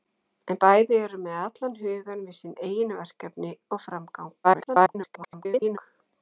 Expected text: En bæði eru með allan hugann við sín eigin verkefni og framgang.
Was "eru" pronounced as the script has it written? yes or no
yes